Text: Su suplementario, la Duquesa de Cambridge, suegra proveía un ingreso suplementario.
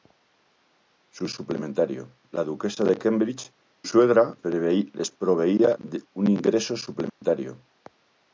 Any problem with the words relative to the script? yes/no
no